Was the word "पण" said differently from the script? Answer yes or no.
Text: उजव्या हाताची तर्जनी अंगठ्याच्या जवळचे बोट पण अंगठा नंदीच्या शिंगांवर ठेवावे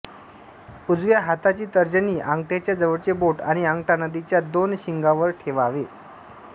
yes